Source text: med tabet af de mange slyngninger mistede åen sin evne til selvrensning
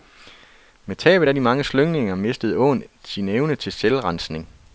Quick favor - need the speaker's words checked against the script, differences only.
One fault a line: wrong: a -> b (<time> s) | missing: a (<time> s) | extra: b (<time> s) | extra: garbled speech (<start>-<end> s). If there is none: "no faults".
no faults